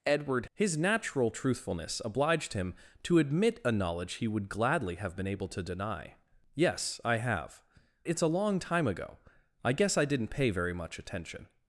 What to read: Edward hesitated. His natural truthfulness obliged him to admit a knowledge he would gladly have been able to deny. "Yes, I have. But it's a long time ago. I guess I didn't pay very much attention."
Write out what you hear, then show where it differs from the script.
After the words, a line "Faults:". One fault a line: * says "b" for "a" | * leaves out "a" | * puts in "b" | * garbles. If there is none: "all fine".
Edward. His natural truthfulness obliged him to admit a knowledge he would gladly have been able to deny. "Yes, I have. It's a long time ago. I guess I didn't pay very much attention."
Faults:
* leaves out "hesitated"
* leaves out "But"